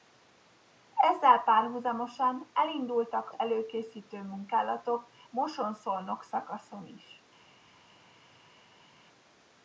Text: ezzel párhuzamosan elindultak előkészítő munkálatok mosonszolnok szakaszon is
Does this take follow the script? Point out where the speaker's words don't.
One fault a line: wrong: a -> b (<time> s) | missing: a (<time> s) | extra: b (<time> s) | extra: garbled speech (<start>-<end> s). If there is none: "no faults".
no faults